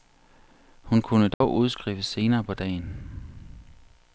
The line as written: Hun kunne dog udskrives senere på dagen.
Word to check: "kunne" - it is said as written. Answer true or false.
true